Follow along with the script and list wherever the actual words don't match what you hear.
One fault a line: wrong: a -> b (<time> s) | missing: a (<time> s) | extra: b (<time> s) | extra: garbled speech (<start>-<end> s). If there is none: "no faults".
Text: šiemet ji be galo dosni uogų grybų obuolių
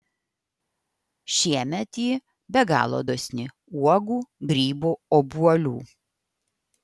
no faults